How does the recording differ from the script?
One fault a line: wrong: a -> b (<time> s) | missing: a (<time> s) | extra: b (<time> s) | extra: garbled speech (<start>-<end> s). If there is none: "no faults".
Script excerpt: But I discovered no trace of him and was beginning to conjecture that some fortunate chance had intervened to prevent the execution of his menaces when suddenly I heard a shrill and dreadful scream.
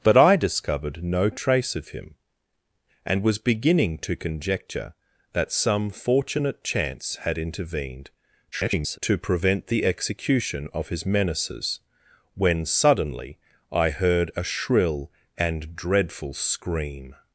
extra: garbled speech (8.5-9.0 s)